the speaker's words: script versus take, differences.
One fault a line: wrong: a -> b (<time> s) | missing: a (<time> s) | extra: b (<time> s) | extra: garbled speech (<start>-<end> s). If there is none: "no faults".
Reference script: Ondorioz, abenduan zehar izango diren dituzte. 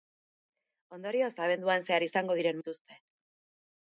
no faults